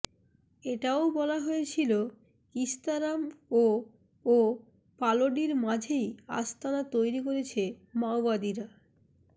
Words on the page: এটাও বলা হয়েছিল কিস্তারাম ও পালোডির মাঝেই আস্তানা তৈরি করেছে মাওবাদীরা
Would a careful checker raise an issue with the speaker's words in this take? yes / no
yes